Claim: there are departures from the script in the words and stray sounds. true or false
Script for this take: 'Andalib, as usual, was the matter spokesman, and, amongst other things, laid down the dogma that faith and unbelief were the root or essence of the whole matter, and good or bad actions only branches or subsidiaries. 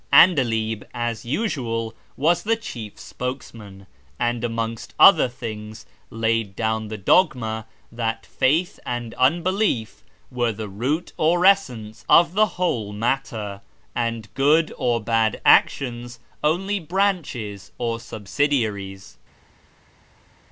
true